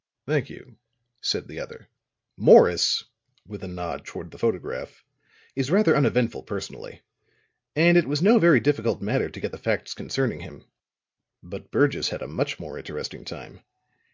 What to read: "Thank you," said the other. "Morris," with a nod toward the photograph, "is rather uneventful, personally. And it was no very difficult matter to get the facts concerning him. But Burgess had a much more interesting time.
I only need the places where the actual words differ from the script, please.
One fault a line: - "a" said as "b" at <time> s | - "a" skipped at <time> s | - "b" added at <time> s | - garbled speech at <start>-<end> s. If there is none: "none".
none